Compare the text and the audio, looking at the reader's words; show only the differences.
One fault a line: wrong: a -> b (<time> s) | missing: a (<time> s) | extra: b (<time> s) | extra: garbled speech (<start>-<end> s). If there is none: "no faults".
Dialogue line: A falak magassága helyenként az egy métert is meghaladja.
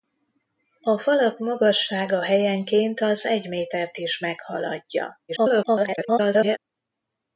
extra: garbled speech (5.3-6.6 s)